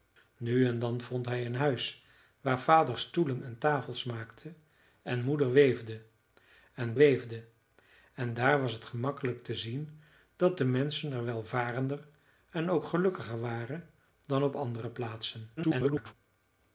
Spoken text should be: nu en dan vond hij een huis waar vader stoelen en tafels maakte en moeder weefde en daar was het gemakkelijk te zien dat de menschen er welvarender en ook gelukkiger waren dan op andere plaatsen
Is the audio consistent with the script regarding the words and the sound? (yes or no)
no